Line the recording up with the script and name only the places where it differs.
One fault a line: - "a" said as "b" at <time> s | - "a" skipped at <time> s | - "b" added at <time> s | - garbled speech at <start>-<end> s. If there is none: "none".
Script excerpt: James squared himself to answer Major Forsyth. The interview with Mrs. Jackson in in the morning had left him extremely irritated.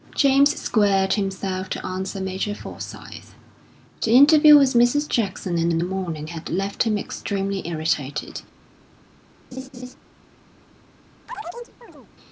none